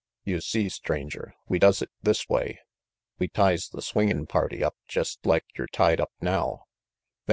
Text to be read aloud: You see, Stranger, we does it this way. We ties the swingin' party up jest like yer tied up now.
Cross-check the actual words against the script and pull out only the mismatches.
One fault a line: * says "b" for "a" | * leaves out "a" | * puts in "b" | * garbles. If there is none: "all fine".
all fine